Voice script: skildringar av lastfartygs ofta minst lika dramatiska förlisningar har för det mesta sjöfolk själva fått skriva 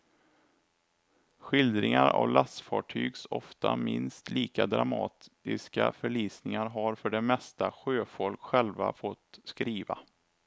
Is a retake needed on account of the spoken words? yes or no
no